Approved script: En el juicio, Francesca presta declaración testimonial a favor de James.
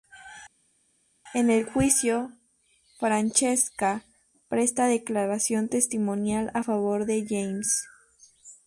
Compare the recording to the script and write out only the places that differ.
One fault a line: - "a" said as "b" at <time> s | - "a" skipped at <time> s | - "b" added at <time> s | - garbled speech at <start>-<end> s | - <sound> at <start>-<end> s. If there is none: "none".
none